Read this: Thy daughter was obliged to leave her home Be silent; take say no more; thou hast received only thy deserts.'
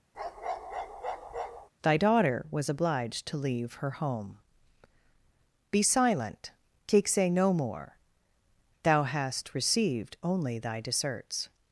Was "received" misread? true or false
false